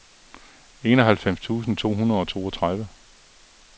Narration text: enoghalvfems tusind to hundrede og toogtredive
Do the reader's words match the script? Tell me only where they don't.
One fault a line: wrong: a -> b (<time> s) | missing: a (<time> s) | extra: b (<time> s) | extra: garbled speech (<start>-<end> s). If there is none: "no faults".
no faults